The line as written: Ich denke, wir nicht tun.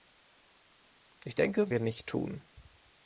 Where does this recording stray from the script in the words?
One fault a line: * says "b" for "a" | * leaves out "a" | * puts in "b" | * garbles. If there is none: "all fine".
all fine